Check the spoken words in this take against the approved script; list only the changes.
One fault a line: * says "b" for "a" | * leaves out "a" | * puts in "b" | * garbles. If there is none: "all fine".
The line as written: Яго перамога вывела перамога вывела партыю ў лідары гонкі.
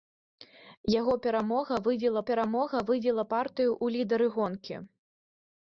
all fine